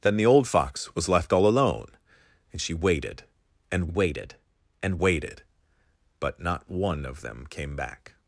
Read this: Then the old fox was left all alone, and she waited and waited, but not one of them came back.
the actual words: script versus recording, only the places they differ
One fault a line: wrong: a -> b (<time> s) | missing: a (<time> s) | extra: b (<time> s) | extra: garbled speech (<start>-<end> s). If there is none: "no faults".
extra: and waited (4.8 s)